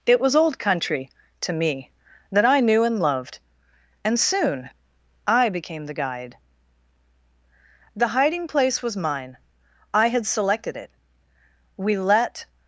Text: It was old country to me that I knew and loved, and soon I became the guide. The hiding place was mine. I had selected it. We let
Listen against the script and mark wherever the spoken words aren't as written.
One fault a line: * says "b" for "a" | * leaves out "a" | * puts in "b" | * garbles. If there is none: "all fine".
all fine